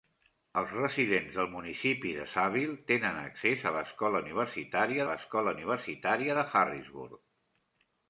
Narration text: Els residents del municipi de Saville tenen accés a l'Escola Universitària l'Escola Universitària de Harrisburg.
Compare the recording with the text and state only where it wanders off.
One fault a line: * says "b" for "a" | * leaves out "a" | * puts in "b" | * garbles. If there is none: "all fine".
all fine